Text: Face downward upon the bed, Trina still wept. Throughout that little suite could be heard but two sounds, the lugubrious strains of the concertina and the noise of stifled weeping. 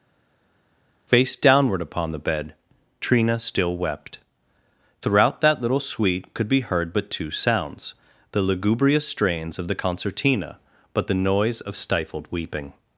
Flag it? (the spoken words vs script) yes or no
yes